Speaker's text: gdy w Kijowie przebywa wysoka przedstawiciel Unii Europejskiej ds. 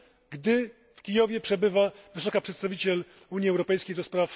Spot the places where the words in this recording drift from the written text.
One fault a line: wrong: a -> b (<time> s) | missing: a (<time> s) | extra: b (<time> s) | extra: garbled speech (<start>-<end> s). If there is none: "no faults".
no faults